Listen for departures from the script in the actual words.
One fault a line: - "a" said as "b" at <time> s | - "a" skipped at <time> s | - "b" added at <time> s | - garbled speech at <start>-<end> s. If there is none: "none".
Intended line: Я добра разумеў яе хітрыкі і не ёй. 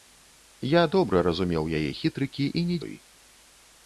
none